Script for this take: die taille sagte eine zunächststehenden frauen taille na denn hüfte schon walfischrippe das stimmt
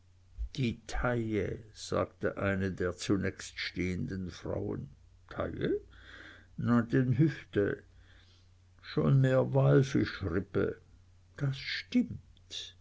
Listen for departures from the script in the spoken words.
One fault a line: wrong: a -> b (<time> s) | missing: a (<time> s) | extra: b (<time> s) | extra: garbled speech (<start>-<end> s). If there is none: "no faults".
extra: der (2.7 s)
extra: mehr (9.2 s)